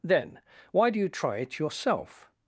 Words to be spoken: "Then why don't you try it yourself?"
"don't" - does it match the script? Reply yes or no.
no